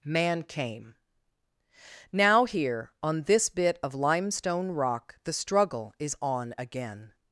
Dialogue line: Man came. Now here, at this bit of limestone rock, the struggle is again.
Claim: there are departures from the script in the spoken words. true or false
true